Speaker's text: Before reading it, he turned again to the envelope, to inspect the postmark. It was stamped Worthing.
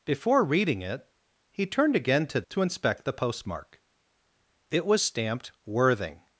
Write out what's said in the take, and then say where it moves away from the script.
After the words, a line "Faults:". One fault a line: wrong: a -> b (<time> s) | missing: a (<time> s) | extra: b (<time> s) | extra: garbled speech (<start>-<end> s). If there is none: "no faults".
Before reading it, he turned again to to inspect the postmark. It was stamped Worthing.
Faults:
missing: the envelope (2.4 s)